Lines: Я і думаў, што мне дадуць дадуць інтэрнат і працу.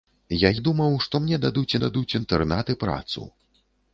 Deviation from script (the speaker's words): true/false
false